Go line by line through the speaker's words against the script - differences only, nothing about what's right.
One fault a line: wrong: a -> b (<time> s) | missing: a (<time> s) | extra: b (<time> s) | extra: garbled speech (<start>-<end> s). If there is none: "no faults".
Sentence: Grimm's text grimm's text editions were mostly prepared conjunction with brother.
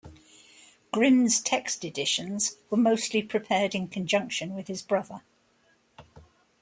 missing: grimm's text (1.9 s)
extra: in (3.8 s)
extra: his (4.7 s)